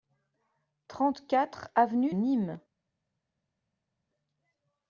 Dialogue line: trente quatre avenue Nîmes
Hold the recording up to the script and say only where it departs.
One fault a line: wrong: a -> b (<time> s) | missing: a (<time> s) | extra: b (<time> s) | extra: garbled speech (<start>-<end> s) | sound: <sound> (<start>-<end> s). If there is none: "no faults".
no faults